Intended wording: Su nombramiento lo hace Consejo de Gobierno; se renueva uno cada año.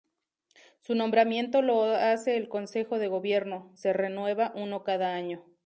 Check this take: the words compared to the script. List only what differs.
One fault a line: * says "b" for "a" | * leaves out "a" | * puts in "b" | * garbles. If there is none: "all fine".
* puts in "el"